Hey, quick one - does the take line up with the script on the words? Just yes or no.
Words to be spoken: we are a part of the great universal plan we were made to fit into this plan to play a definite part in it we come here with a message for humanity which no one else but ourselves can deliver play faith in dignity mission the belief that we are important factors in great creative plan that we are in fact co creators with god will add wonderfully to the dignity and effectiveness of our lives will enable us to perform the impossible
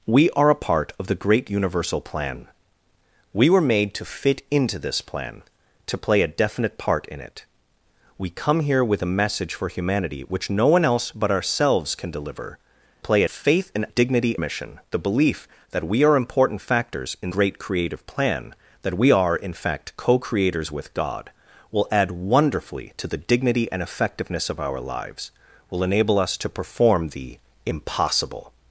yes